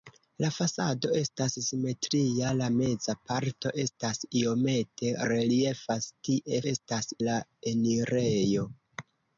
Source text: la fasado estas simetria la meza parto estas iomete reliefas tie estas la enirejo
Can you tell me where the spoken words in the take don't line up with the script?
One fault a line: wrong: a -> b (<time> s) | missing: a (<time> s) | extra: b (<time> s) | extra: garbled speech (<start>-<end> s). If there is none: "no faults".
no faults